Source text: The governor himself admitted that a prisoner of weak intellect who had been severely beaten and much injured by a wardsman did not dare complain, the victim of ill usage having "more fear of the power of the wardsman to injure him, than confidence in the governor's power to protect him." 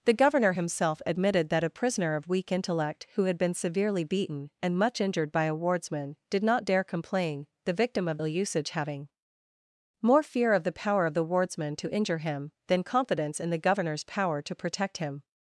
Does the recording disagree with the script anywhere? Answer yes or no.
no